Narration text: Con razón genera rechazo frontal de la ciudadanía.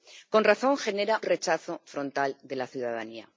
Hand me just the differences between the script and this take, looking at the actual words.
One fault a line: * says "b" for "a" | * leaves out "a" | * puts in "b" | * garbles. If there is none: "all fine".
all fine